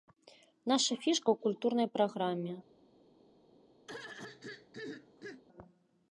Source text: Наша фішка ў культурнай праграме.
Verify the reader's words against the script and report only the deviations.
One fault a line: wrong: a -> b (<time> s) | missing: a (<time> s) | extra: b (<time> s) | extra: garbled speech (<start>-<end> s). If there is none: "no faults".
no faults